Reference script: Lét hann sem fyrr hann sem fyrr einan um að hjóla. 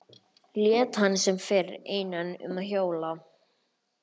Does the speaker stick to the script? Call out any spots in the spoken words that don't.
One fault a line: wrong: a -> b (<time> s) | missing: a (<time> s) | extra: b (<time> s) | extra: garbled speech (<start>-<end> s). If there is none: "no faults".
missing: hann sem fyrr (1.7 s)